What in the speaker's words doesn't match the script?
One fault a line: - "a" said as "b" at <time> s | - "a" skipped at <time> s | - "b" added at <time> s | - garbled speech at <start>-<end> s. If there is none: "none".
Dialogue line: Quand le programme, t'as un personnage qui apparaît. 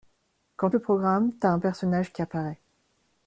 none